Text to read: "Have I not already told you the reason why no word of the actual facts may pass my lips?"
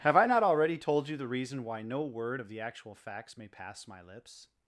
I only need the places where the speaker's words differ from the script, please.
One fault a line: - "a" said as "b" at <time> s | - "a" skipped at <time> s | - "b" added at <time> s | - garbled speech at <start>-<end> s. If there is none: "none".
none